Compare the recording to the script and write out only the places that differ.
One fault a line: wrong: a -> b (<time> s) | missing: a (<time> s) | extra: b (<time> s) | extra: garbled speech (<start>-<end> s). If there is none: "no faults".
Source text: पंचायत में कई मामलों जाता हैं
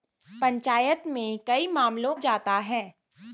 no faults